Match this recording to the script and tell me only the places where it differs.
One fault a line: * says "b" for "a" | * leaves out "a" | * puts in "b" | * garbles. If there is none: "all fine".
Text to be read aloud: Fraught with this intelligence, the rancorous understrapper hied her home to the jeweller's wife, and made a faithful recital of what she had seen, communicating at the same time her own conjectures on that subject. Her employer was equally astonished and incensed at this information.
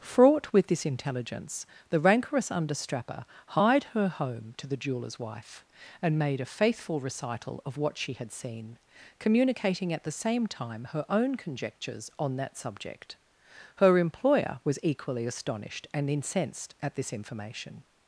all fine